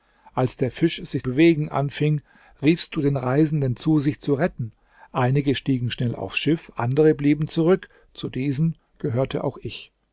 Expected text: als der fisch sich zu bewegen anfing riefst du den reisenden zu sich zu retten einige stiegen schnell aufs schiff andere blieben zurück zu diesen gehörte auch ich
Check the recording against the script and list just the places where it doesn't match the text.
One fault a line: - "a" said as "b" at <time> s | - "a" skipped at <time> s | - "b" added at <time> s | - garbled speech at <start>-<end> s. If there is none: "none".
- "zu" skipped at 1.3 s